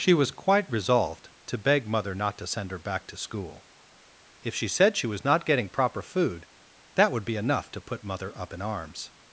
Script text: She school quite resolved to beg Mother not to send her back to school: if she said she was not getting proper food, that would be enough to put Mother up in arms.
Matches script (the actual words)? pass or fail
fail